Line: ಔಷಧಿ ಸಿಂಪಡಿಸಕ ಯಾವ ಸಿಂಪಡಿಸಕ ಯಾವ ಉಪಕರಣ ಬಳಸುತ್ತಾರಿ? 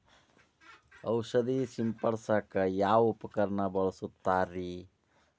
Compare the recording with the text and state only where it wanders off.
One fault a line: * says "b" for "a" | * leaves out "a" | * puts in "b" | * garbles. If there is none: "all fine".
* leaves out "ಸಿಂಪಡಿಸಕ ಯಾವ"